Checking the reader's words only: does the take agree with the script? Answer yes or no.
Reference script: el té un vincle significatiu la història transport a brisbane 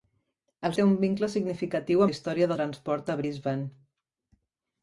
yes